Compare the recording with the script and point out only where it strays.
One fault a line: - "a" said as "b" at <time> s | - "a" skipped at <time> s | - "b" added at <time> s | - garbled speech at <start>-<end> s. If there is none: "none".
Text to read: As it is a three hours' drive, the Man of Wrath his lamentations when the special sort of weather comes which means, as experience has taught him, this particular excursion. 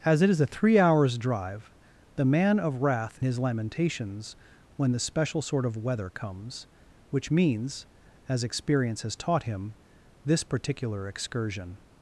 none